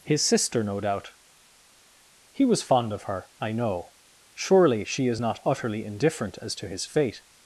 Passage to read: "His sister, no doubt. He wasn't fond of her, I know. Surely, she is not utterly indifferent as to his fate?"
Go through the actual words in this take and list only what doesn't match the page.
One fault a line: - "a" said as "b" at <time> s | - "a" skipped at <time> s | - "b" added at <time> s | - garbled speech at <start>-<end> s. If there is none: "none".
- "wasn't" said as "was" at 2.4 s